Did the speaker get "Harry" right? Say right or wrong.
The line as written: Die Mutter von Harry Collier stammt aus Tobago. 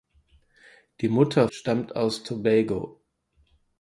wrong